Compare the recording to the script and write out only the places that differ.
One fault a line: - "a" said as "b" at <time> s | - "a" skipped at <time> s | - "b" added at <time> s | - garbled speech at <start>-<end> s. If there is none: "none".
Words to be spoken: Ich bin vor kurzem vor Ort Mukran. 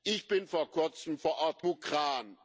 none